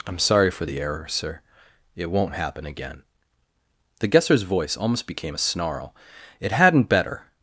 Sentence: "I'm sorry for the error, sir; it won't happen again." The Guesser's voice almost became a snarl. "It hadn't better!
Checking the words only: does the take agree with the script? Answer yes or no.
yes